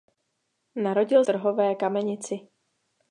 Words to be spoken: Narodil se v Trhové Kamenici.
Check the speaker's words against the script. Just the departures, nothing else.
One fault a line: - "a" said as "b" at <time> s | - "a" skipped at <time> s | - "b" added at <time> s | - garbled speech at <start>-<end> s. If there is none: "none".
- "se v" skipped at 1.2 s